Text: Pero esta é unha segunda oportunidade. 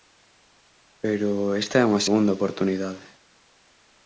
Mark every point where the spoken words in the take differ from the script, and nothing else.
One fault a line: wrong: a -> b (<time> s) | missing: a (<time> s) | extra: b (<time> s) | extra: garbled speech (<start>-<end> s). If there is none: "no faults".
no faults